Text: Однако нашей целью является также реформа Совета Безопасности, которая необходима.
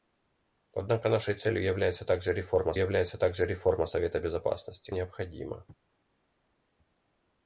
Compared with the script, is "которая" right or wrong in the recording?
wrong